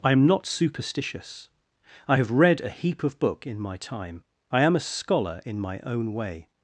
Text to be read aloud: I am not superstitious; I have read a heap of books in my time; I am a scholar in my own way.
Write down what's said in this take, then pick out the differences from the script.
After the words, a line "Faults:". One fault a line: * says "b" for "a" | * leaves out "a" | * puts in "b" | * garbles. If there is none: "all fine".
I am not superstitious; I have read a heap of book in my time; I am a scholar in my own way.
Faults:
* says "book" for "books"